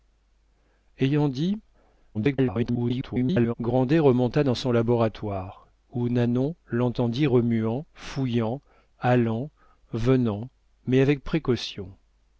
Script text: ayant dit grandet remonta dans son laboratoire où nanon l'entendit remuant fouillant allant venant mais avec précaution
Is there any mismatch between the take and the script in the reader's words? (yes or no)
yes